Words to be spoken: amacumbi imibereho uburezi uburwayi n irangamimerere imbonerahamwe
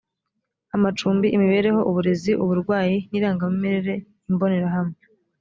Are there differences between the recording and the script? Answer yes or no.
no